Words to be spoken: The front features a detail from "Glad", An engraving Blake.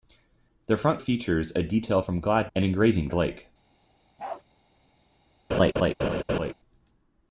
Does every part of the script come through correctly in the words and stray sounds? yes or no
no